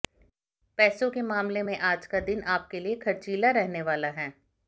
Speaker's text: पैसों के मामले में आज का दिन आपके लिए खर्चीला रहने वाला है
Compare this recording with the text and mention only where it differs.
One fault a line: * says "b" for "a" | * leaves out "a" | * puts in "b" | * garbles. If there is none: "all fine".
all fine